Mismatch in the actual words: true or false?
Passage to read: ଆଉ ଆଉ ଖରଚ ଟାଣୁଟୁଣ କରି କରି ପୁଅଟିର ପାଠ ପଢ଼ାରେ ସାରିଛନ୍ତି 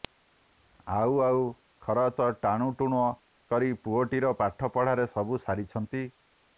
true